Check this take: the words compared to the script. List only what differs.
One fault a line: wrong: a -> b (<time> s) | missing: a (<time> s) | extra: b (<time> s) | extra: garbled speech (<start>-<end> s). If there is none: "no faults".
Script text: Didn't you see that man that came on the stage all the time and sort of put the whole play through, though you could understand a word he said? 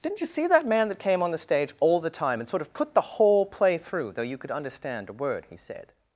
no faults